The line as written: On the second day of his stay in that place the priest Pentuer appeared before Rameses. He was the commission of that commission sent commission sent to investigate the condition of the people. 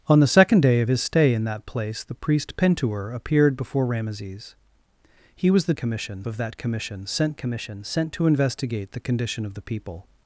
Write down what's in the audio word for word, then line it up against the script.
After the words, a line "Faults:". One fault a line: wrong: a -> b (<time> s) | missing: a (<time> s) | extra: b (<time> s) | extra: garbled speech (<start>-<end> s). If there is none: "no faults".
On the second day of his stay in that place the priest Pentuer appeared before Rameses. He was the commission of that commission sent commission sent to investigate the condition of the people.
Faults:
no faults